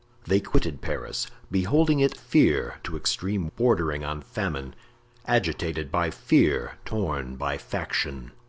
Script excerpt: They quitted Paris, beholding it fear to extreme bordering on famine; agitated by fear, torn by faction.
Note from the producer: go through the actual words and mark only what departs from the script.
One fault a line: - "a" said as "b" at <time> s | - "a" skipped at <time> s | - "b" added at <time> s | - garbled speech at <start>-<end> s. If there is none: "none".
none